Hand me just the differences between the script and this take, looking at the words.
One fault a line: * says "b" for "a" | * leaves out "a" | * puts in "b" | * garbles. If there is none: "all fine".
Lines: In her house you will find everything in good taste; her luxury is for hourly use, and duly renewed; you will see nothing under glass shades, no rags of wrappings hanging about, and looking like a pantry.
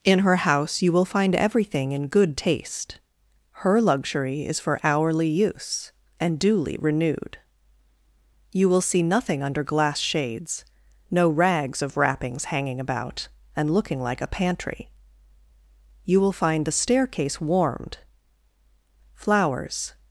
* puts in "You will find the staircase warmed Flowers"